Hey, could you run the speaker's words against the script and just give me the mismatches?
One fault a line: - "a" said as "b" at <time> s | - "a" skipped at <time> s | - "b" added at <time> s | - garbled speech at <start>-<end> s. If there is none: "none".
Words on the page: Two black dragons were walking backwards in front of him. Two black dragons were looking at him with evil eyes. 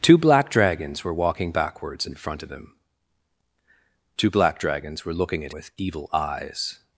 - "him" skipped at 5.5 s